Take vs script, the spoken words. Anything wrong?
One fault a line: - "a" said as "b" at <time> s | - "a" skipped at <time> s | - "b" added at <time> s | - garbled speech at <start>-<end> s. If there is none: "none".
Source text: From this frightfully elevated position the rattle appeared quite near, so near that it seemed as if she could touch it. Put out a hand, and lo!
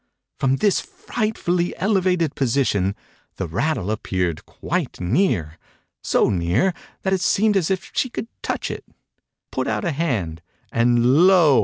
none